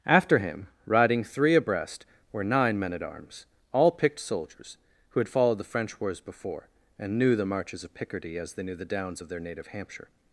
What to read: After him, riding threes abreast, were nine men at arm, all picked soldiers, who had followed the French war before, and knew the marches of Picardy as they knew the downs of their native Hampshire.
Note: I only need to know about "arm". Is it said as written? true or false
false